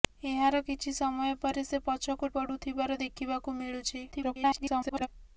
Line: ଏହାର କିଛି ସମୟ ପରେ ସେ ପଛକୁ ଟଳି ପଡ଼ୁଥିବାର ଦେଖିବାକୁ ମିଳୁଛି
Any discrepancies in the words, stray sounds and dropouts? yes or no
yes